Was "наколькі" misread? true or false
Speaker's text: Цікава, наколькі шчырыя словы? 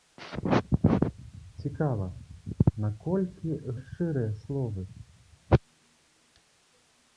false